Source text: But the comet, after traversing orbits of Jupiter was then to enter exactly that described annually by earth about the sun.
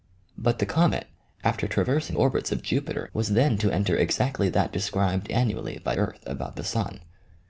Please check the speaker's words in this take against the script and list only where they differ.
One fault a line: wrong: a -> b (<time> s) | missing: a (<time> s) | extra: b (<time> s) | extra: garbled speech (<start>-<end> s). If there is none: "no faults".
no faults